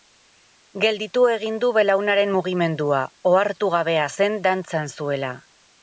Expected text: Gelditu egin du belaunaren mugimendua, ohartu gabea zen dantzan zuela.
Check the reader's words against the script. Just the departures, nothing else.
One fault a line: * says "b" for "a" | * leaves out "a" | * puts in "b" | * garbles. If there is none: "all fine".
all fine